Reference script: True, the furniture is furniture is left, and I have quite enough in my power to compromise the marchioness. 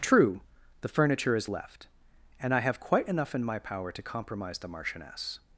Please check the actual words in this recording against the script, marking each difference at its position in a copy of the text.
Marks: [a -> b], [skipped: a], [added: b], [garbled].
True, the furniture is [skipped: furniture is] left, and I have quite enough in my power to compromise the marchioness.